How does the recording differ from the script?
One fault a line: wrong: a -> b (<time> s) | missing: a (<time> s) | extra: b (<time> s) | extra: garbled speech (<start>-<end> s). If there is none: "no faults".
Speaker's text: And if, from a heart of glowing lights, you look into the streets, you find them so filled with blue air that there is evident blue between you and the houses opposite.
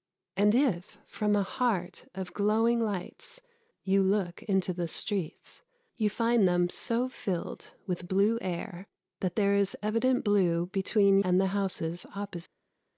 missing: you (11.2 s)